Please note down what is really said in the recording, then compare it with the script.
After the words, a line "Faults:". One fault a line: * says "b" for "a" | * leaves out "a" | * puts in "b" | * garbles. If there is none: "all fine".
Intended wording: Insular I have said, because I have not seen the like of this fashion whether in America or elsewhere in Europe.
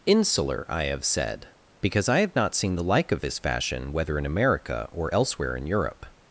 Insular I have said, because I have not seen the like of this fashion whether in America or elsewhere in Europe.
Faults:
all fine